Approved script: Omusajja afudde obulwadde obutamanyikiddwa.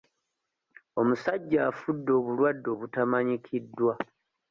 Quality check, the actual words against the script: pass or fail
pass